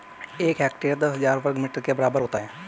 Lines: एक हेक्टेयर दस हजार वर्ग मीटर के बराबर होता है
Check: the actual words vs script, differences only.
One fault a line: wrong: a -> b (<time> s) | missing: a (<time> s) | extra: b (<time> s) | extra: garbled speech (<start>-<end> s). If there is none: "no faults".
no faults